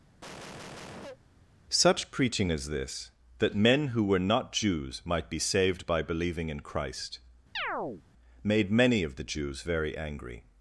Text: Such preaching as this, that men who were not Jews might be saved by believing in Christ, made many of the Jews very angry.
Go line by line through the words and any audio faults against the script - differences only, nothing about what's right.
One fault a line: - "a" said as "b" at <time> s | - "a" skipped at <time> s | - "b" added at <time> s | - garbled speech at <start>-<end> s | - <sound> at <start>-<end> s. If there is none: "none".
- cough at 0.2-1.2 s
- chirp at 7.5-8.0 s